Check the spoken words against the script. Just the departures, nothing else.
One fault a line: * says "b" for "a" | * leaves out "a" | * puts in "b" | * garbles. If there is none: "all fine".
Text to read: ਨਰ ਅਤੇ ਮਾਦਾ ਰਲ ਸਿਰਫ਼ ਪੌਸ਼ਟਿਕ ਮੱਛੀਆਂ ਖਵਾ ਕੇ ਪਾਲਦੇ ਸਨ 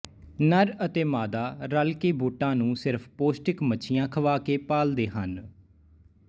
* puts in "ਕੇ ਬੋਟਾਂ ਨੂੰ"
* says "ਹਨ" for "ਸਨ"